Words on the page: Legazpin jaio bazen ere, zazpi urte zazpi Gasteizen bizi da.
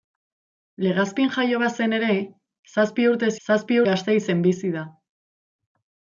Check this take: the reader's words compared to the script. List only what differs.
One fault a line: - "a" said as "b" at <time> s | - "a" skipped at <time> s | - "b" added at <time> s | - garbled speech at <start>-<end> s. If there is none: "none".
none